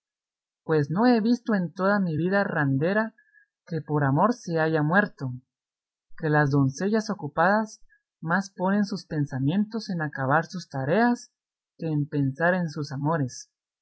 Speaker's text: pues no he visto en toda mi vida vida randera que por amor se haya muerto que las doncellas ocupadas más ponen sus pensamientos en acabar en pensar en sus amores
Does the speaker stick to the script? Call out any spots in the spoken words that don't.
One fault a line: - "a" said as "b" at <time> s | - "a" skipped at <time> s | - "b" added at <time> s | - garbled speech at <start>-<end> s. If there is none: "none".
- "vida" skipped at 2.5 s
- "sus tareas que" added at 10.5 s